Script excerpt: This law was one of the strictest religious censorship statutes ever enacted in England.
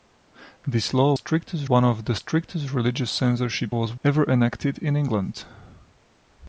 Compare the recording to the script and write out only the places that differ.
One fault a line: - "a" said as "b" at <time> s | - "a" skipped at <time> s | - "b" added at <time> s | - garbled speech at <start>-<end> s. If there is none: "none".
- "was" said as "strictest" at 1.1 s
- "statutes" said as "was" at 3.7 s